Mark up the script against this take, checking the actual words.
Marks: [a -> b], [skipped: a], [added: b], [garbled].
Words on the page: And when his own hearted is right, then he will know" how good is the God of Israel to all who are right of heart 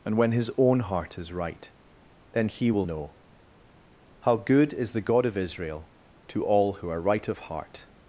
And when his own [hearted -> heart] is right, then he will know" how good is the God of Israel to all who are right of heart